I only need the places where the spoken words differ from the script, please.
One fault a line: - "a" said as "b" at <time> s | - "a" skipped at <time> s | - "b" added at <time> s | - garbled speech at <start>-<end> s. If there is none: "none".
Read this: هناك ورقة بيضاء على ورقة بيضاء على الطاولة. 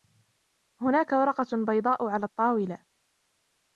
- "ورقة بيضاء على" skipped at 2.2 s